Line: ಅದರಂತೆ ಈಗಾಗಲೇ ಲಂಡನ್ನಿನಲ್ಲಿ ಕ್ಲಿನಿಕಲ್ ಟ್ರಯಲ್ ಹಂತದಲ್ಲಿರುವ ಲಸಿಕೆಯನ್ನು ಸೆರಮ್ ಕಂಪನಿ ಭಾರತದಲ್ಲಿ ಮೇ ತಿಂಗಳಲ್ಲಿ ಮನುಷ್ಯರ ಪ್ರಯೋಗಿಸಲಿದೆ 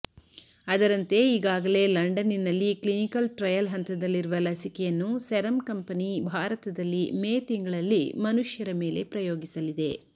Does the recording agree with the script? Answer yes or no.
no